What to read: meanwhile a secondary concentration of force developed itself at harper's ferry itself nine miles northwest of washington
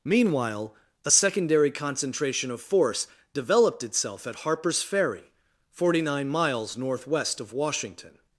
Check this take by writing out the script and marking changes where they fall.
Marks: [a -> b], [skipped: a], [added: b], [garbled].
meanwhile a secondary concentration of force developed itself at harper's ferry [itself -> forty] nine miles northwest of washington